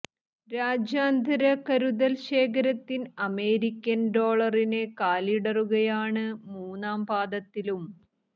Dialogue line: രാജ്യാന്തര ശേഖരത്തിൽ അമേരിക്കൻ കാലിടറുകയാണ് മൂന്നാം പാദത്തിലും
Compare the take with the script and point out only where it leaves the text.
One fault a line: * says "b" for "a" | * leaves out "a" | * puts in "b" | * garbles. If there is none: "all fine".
* puts in "കരുതൽ"
* puts in "ഡോളറിന്"